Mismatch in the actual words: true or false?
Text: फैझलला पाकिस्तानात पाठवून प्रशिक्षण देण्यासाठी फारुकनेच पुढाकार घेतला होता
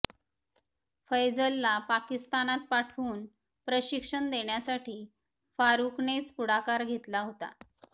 false